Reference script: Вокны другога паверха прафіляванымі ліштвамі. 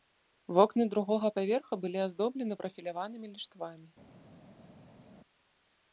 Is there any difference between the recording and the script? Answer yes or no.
yes